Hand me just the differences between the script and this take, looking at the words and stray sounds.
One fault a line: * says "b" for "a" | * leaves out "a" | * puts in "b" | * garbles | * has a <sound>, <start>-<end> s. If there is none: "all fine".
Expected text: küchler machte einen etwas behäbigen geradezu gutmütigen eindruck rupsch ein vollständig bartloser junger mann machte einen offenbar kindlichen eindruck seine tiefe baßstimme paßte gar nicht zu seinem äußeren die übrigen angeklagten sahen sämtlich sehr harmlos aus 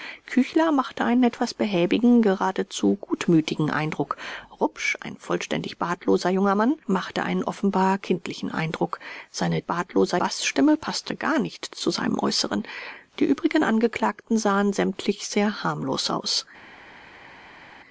* says "bartloser" for "tiefe"